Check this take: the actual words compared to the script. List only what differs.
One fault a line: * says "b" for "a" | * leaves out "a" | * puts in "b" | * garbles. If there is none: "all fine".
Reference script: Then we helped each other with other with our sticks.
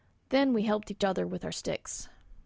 * leaves out "other with"